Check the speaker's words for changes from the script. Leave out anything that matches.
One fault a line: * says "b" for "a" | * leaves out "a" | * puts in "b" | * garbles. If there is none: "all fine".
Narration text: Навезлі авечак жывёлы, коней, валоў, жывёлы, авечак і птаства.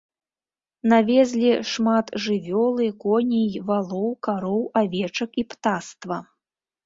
* says "шмат" for "авечак"
* says "кароў" for "жывёлы"